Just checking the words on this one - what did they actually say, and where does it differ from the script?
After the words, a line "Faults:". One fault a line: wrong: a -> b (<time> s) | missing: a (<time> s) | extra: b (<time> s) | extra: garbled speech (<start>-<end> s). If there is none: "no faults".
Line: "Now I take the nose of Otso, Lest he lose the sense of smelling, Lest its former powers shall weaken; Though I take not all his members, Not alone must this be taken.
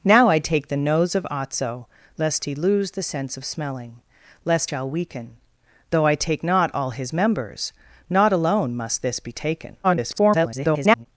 "Now I take the nose of Otso, Lest he lose the sense of smelling, Lest shall weaken; Though I take not all his members, Not alone must this be taken. [garbled]
Faults:
missing: its former powers (4.7 s)
extra: garbled speech (9.8-11.1 s)